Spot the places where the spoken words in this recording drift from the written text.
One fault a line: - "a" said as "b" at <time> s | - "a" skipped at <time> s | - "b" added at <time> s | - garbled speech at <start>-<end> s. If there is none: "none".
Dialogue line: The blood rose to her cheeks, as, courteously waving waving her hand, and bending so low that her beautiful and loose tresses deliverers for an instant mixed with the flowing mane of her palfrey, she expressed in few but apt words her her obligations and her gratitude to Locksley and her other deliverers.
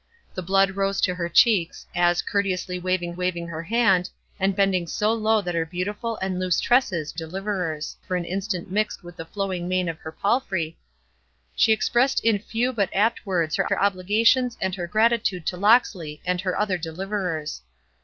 none